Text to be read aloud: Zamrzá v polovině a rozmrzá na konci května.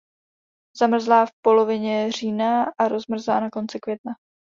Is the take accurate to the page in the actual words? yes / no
no